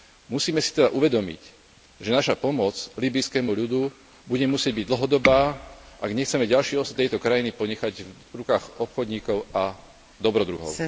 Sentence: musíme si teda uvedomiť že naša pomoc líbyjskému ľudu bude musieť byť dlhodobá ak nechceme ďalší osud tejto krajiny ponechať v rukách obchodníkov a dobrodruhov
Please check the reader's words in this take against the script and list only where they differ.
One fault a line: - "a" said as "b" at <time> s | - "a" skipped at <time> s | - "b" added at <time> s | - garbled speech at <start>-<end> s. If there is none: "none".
none